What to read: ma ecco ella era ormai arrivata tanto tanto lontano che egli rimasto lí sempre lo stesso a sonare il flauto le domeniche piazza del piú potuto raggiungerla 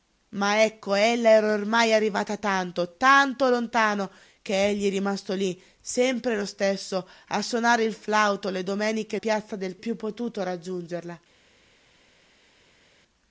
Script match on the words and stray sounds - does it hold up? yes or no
yes